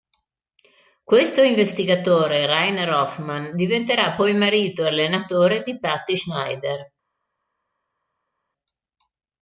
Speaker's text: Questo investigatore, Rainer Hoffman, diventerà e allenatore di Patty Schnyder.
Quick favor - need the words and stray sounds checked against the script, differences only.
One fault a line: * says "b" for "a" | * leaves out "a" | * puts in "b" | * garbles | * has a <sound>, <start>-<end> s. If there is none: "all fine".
* puts in "poi marito"